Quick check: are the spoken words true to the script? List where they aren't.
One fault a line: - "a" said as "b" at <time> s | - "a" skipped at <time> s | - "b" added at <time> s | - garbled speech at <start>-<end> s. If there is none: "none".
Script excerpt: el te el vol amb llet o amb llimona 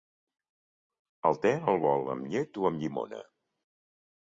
none